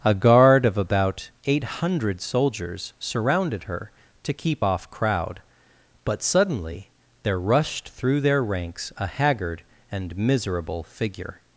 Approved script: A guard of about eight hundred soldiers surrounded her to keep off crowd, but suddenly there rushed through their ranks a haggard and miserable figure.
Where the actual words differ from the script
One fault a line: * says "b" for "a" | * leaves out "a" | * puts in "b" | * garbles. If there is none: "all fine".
all fine